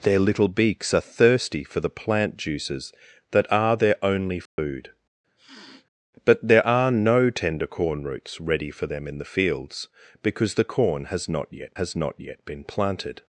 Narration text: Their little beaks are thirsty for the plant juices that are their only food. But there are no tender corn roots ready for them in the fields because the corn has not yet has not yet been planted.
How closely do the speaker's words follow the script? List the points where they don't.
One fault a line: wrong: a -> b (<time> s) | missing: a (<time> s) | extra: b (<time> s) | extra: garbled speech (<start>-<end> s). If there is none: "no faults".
no faults